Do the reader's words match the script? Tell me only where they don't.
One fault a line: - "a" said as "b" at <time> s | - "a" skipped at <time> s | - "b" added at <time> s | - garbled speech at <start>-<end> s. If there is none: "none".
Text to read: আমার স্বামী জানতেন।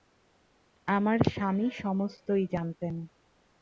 - "সমস্তই" added at 1.8 s